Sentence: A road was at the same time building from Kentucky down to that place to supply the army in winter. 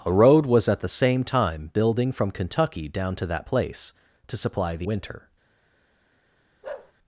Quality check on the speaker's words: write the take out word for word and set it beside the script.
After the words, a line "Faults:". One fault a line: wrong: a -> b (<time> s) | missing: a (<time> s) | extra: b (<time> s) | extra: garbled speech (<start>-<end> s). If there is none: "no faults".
A road was at the same time building from Kentucky down to that place to supply the winter.
Faults:
missing: army in (4.9 s)